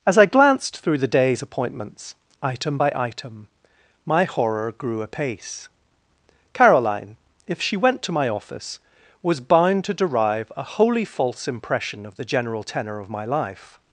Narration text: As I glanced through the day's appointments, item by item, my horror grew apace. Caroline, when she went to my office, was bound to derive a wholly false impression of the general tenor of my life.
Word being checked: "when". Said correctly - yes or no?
no